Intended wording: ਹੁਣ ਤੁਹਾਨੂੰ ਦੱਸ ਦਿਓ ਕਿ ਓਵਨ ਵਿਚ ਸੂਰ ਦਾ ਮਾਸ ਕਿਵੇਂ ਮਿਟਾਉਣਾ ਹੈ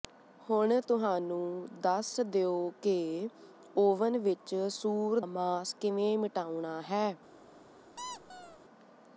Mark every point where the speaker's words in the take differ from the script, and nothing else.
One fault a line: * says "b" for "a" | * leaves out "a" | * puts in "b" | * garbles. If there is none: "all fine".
* leaves out "ਦਾ"